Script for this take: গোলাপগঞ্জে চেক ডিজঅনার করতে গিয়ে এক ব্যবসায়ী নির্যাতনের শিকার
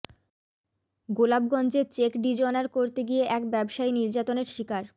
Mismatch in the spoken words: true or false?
false